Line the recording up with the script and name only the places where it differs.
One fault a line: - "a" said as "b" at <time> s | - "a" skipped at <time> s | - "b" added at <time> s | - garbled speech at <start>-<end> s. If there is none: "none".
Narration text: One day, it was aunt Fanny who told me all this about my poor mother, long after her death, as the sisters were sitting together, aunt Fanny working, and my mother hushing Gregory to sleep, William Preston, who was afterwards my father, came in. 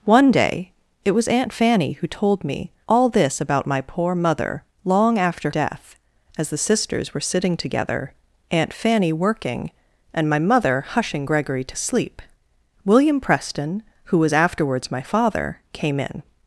- "her" skipped at 5.5 s